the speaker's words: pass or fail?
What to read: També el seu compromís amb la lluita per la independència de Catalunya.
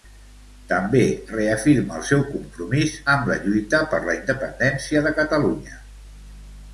fail